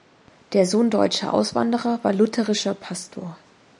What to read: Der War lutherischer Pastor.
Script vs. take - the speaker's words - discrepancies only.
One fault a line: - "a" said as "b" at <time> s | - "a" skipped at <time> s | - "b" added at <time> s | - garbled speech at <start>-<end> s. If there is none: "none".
- "Sohn deutscher Auswanderer" added at 0.7 s